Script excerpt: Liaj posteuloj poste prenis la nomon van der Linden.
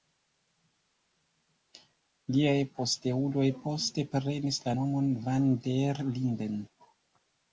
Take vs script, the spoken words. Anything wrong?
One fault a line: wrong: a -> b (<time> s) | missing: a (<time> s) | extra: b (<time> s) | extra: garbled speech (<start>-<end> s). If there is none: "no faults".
no faults